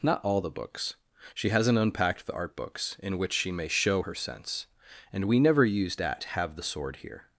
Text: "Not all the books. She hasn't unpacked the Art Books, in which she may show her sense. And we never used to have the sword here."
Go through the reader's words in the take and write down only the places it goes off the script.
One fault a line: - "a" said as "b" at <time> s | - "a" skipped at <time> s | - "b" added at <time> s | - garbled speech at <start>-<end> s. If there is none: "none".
- "to" said as "at" at 6.0 s